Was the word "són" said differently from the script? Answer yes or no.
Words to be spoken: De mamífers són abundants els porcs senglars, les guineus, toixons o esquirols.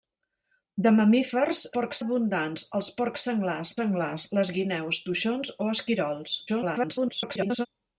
yes